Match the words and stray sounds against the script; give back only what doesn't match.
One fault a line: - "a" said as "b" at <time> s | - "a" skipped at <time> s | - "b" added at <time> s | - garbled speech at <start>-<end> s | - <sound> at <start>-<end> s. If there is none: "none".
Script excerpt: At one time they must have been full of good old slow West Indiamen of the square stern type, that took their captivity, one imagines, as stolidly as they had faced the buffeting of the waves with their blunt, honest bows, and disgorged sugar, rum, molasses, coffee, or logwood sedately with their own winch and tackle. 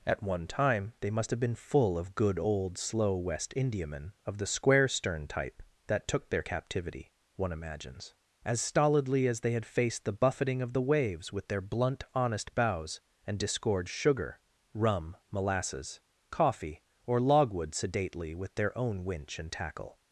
none